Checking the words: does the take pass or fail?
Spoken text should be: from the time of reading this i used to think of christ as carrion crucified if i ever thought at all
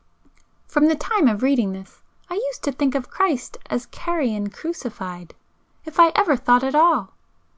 pass